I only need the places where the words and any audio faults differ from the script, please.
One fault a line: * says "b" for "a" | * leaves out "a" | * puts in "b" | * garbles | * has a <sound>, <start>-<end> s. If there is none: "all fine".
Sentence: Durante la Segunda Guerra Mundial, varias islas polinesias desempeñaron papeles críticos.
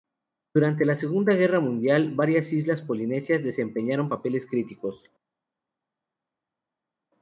all fine